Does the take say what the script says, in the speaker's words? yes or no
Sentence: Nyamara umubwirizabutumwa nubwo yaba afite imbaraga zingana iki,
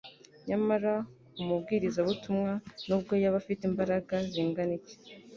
yes